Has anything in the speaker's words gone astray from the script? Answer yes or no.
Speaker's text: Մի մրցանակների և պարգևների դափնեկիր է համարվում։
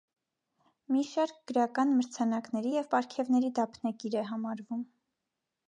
yes